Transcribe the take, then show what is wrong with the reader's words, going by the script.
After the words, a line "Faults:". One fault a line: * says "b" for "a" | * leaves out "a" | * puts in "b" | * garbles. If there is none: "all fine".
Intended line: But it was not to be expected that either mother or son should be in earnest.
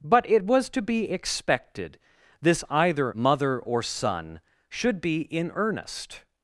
But it was to be expected this either mother or son should be in earnest.
Faults:
* leaves out "not"
* says "this" for "that"